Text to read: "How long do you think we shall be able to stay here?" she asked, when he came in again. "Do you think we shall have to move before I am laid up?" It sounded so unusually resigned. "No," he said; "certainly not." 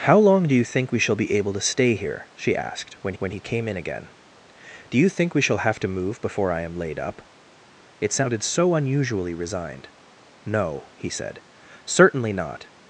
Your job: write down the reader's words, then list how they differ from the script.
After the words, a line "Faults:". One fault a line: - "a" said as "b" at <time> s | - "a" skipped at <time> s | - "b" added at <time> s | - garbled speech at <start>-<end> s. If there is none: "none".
"How long do you think we shall be able to stay here?" she asked, when when he came in again. "Do you think we shall have to move before I am laid up?" It sounded so unusually resigned. "No," he said; "certainly not."
Faults:
- "when" added at 3.2 s